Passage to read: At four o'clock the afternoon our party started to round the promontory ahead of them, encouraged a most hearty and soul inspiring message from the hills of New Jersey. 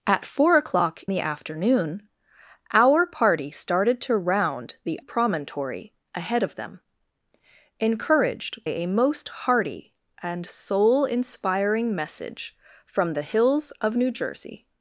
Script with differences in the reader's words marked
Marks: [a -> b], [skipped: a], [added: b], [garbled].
At four o'clock the afternoon our party started to round the promontory ahead of them, encouraged a most hearty and soul inspiring message from the hills of New Jersey.